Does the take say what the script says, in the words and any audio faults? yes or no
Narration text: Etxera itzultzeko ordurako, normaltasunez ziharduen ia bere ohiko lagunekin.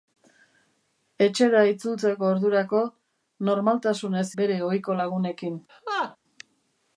no